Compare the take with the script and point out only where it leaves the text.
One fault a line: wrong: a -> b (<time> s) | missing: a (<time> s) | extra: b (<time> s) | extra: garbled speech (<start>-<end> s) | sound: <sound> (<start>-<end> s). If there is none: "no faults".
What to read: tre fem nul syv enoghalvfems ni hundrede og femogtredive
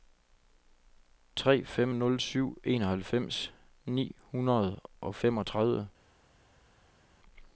no faults